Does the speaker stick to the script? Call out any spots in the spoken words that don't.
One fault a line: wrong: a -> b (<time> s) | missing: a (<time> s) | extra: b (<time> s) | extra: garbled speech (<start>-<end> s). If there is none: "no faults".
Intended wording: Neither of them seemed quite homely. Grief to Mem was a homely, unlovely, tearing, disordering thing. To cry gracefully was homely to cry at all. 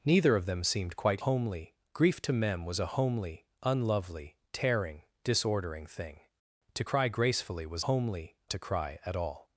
no faults